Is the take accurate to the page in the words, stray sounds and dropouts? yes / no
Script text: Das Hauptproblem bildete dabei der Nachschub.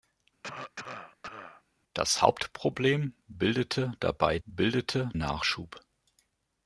no